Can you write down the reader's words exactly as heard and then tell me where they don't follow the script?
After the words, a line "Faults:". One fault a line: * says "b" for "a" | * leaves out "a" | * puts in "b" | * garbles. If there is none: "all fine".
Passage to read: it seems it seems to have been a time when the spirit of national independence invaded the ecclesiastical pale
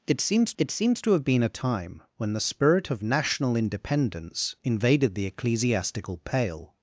it seems it seems to have been a time when the spirit of national independence invaded the ecclesiastical pale
Faults:
all fine